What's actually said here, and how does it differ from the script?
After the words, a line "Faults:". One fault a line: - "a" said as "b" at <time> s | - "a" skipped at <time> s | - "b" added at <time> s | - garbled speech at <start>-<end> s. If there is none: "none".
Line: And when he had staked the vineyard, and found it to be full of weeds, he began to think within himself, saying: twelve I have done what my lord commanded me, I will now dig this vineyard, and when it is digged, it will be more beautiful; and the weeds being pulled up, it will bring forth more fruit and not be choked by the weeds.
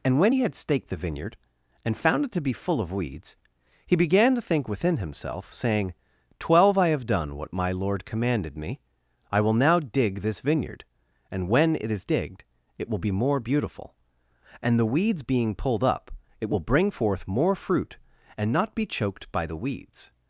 And when he had staked the vineyard, and found it to be full of weeds, he began to think within himself, saying: twelve I have done what my lord commanded me, I will now dig this vineyard, and when it is digged, it will be more beautiful; and the weeds being pulled up, it will bring forth more fruit and not be choked by the weeds.
Faults:
none